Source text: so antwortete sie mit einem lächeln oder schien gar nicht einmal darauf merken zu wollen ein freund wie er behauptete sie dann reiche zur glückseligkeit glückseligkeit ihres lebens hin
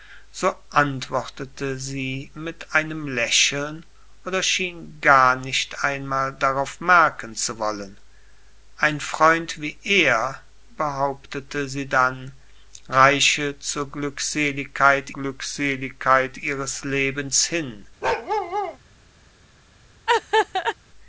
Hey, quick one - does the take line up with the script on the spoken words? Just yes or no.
yes